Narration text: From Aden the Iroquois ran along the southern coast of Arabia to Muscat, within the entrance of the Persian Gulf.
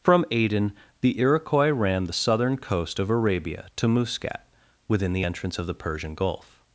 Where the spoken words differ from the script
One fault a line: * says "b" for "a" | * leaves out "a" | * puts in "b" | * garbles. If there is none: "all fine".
* leaves out "along"